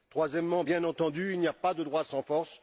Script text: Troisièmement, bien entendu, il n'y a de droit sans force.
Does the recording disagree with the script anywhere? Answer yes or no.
yes